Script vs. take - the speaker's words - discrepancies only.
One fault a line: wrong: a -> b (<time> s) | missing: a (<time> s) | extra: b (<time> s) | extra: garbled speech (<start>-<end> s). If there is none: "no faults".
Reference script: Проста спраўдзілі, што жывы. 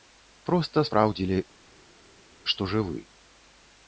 no faults